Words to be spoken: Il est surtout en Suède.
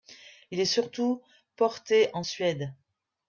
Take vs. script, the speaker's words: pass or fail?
fail